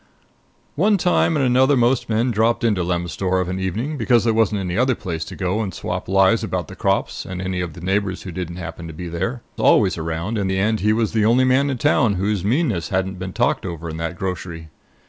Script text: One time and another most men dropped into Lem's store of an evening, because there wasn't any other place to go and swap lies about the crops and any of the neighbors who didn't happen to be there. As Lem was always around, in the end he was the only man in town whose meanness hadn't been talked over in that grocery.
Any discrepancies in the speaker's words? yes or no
yes